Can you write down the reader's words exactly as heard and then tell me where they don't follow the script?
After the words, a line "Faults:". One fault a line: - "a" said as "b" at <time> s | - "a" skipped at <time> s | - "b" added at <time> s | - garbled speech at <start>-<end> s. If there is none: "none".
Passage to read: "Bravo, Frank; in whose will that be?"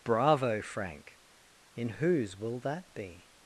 "Bravo, Frank; in whose will that be?"
Faults:
none